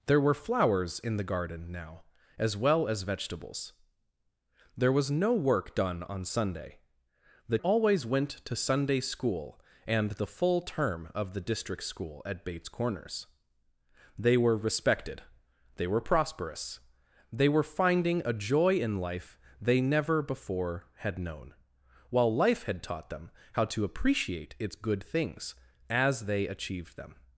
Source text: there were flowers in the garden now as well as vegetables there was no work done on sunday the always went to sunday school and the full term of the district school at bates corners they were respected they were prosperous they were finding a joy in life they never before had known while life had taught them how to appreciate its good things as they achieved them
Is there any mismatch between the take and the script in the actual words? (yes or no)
no